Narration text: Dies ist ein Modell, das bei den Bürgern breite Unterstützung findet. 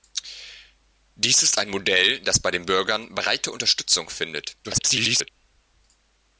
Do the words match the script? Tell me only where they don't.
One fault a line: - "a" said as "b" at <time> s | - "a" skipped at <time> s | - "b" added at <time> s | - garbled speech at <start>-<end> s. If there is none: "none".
- garbled speech at 4.6-5.3 s